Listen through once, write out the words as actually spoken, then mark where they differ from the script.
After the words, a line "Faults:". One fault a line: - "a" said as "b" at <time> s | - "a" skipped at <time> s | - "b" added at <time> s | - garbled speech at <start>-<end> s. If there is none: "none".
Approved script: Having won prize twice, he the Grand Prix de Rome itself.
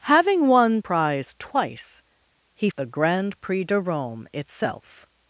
Having won prize twice, he the Grand Prix de Rome itself.
Faults:
none